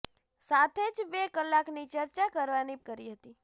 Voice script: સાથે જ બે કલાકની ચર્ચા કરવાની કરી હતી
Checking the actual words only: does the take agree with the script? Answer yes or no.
yes